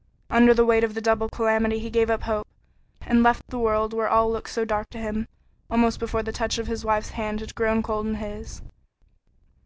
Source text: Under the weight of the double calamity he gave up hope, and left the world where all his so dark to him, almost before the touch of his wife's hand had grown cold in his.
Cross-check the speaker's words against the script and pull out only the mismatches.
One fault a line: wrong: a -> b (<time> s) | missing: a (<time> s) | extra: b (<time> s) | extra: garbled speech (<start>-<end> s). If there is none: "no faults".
wrong: his -> looked (4.3 s)